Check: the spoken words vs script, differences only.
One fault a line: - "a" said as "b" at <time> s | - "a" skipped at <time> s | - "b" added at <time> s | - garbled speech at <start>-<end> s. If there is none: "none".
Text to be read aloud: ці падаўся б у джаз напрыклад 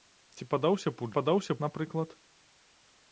- "джаз" said as "падаўся" at 1.2 s